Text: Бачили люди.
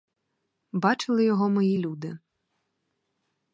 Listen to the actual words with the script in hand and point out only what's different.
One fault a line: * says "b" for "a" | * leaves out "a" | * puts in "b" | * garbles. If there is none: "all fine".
* puts in "його мої"